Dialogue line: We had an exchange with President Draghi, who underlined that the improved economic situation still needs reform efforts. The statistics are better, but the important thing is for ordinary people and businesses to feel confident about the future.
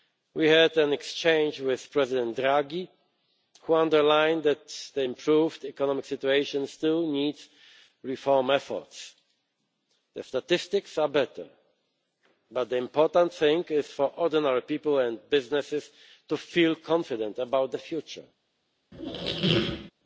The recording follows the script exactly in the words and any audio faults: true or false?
false